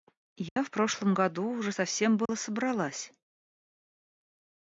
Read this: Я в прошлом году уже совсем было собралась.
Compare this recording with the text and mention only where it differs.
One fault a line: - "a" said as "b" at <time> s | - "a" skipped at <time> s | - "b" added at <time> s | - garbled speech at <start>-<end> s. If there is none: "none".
none